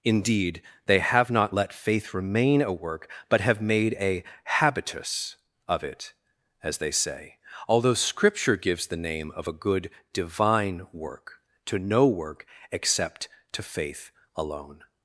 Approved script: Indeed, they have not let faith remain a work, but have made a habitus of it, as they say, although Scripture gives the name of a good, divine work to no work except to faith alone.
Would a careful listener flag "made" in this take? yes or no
no